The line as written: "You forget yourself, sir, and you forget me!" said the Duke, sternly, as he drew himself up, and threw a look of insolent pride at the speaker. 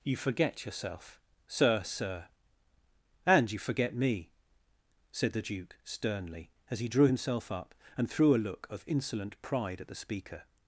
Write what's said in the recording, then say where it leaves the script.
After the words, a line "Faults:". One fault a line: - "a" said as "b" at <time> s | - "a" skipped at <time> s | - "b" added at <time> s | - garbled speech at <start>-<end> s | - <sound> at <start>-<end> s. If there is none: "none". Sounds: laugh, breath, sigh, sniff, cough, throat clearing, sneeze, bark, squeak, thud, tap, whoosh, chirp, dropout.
"You forget yourself, sir sir, and you forget me!" said the Duke, sternly, as he drew himself up, and threw a look of insolent pride at the speaker.
Faults:
- "sir" added at 1.8 s